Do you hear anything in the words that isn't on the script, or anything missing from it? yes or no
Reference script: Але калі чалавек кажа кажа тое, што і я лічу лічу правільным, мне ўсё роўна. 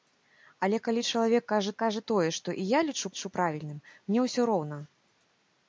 no